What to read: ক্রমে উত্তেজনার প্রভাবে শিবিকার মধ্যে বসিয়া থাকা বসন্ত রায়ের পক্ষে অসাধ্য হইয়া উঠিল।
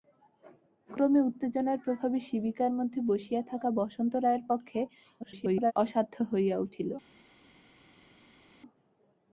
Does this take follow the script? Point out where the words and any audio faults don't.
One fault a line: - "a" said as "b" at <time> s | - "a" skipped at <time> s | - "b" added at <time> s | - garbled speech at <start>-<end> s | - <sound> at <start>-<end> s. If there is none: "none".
- garbled speech at 5.2-5.7 s